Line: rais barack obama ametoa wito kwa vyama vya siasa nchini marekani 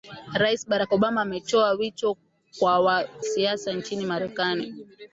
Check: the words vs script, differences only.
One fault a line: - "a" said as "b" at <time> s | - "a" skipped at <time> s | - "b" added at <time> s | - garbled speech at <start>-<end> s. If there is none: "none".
- "kwa vyama vya" skipped at 2.2 s